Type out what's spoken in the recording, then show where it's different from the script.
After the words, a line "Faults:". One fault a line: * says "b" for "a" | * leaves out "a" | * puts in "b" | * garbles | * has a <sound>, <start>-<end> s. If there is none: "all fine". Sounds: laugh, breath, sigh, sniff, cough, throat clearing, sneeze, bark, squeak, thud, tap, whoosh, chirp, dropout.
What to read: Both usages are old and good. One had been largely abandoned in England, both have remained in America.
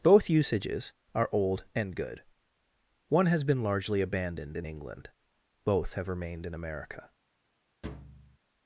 Both usages are old and good. One has been largely abandoned in England, both have remained in America.
Faults:
* says "has" for "had"
* has a thud, 7.8-8.4 s